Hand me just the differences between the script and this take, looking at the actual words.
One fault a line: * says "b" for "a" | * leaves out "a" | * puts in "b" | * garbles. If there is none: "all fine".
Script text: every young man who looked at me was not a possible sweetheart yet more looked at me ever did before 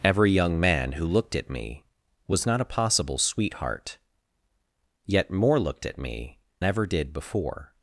all fine